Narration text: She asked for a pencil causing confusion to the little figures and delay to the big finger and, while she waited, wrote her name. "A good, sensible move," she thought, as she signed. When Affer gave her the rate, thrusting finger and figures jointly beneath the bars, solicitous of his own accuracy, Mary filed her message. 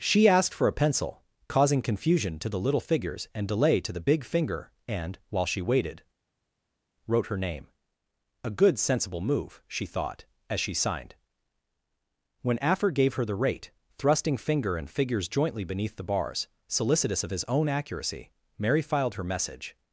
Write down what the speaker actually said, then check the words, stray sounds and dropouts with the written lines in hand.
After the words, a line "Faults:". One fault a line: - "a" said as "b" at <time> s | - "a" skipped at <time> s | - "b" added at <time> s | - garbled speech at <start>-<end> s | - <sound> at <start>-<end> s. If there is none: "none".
She asked for a pencil causing confusion to the little figures and delay to the big finger and, while she waited, wrote her name. "A good, sensible move," she thought, as she signed. When Affer gave her the rate, thrusting finger and figures jointly beneath the bars, solicitous of his own accuracy, Mary filed her message.
Faults:
none